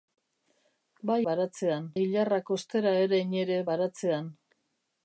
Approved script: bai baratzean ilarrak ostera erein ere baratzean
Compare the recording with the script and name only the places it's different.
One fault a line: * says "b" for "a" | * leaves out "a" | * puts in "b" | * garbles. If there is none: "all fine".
all fine